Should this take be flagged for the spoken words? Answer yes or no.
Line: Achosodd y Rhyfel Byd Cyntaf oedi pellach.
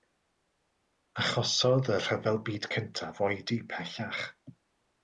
no